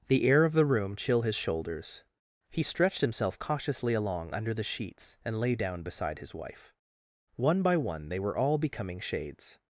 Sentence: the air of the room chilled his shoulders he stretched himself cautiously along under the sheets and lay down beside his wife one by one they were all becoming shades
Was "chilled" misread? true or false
true